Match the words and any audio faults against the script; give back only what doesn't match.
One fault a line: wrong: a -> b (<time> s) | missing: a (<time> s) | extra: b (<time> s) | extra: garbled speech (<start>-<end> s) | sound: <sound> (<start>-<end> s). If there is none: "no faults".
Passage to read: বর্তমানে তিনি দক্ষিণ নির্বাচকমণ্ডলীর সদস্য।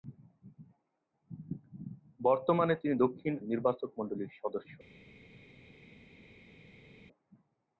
no faults